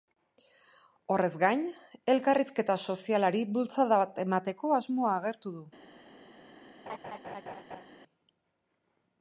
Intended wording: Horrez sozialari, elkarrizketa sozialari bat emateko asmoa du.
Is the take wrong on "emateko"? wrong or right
right